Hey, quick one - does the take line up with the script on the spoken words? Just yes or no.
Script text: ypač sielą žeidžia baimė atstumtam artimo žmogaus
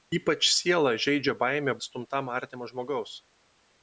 yes